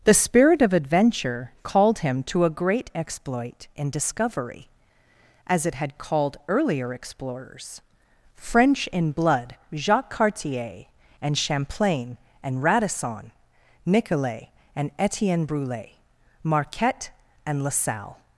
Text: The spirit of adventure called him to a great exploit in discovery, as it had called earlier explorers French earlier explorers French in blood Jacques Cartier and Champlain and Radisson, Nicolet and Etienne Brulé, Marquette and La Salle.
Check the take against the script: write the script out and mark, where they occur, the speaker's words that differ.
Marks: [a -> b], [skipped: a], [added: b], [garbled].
The spirit of adventure called him to a great exploit in discovery, as it had called earlier explorers French [skipped: earlier explorers French] in blood Jacques Cartier and Champlain and Radisson, Nicolet and Etienne Brulé, Marquette and La Salle.